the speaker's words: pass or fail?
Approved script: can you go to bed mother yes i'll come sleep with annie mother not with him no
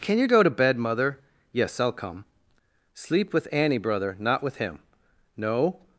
fail